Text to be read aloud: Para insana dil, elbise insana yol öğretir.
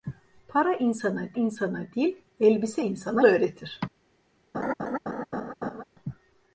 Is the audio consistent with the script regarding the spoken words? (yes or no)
no